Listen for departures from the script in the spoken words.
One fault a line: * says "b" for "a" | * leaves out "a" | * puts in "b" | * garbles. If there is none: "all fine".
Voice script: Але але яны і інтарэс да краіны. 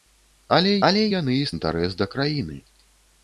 all fine